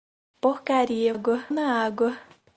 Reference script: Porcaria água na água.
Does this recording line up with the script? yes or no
yes